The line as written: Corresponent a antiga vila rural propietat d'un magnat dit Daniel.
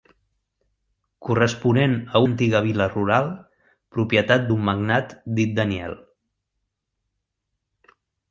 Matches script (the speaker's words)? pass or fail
pass